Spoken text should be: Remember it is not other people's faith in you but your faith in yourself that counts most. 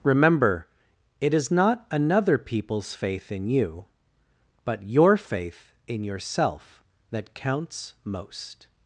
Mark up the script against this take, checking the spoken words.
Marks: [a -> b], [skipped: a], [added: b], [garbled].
Remember it is not [other -> another] people's faith in you but your faith in yourself that counts most.